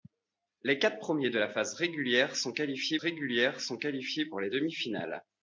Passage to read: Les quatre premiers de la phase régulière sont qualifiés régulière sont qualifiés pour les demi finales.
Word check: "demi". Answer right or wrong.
right